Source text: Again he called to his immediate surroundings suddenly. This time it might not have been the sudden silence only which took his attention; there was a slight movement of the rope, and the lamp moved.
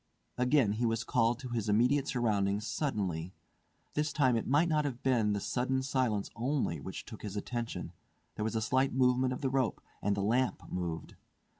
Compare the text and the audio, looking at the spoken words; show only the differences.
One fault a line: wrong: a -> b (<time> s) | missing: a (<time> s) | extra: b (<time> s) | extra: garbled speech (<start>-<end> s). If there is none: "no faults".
extra: was (0.9 s)